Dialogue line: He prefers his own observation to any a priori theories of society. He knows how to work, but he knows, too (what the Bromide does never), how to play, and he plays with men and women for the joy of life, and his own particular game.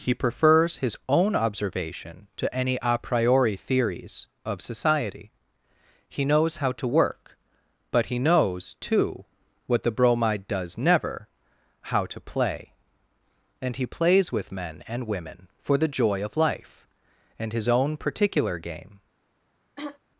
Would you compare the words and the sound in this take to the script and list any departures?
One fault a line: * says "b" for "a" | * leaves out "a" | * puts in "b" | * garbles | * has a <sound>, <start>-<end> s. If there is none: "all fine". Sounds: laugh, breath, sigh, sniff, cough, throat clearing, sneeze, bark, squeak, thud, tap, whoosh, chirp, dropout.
* has a throat clearing, 19.8-20.0 s